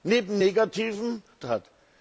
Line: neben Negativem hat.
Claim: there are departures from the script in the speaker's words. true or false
false